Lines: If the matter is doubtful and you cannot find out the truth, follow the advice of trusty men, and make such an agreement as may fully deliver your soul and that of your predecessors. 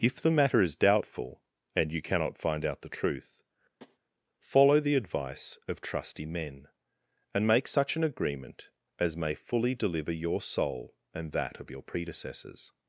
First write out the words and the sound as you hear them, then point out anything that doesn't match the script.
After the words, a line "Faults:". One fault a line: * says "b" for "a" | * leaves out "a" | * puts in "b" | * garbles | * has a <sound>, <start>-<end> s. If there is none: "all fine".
If the matter is doubtful and you cannot find out the truth, follow the advice of trusty men, and make such an agreement as may fully deliver your soul and that of your predecessors.
Faults:
* has a tap, 3.8-4.0 s